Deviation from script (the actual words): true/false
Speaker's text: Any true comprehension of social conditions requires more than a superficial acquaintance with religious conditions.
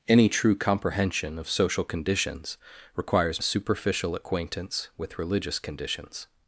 true